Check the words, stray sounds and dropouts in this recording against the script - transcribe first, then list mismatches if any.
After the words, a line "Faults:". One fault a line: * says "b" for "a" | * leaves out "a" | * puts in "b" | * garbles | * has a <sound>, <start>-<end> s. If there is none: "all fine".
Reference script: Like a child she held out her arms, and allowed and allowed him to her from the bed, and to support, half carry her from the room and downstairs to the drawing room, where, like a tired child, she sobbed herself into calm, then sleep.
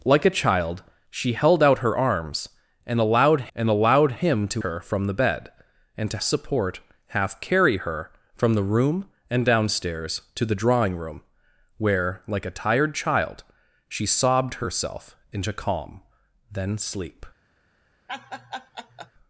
Like a child she held out her arms, and allowed and allowed him to her from the bed, and to support, half carry her from the room and downstairs to the drawing room, where, like a tired child, she sobbed herself into calm, then sleep.
Faults:
* has a laugh, 18.1-19.1 s